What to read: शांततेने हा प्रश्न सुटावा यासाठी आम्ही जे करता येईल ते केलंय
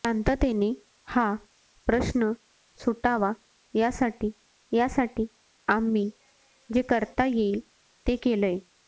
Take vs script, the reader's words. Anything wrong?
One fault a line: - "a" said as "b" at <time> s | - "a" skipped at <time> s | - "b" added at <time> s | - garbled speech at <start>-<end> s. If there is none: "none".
- "यासाठी" added at 4.7 s